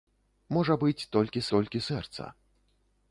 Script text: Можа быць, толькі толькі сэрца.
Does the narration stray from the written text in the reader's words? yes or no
no